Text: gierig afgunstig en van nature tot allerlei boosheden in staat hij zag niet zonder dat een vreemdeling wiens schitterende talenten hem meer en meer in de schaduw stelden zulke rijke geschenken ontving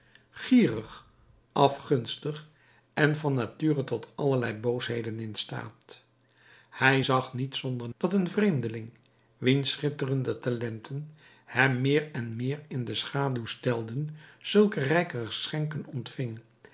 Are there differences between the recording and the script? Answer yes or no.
no